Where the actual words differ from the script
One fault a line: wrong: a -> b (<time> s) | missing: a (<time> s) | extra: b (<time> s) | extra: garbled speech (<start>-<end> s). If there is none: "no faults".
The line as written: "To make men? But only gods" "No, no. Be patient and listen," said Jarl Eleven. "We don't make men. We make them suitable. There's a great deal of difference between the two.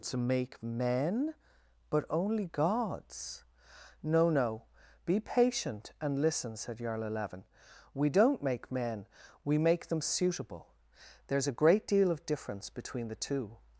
no faults